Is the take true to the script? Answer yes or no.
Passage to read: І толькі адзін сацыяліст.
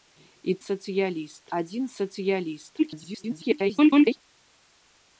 no